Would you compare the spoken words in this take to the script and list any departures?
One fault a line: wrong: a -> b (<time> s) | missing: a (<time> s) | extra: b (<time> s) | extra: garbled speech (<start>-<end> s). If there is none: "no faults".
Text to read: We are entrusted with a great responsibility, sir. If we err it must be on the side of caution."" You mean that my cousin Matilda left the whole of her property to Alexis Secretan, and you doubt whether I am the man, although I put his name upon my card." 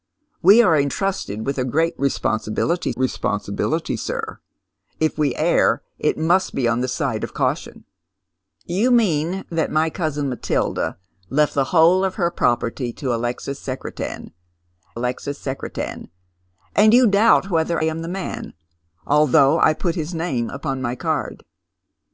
extra: responsibility (2.9 s)
extra: Alexis Secretan (14.9 s)
missing: I (17.8 s)